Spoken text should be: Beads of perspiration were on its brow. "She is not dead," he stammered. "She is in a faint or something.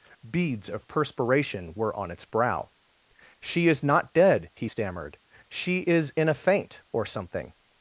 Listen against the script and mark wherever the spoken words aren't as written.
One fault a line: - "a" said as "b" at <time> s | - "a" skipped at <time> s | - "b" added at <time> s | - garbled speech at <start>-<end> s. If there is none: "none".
none